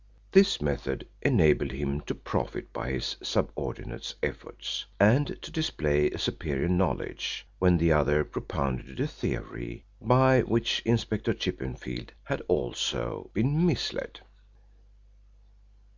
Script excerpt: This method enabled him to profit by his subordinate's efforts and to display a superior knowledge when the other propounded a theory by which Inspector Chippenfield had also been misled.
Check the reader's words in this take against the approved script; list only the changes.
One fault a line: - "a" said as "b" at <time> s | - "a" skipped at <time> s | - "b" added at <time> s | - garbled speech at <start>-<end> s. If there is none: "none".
none